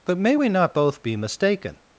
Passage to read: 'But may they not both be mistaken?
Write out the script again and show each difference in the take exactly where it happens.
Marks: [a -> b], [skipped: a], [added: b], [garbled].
'But may [they -> we] not both be mistaken?